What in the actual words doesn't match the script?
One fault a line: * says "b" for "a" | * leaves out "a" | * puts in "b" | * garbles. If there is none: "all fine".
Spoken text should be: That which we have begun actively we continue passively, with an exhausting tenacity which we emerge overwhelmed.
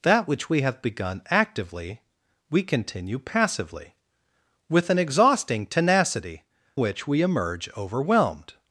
all fine